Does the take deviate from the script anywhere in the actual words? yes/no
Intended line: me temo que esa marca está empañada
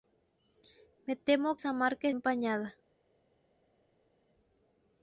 yes